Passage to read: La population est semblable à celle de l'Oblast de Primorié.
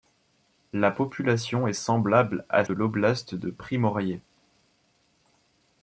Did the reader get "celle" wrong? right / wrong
wrong